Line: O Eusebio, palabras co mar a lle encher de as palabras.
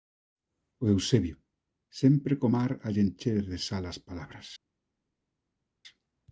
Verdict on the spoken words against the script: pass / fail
fail